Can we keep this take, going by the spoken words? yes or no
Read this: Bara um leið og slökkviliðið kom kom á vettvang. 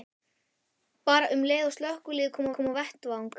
yes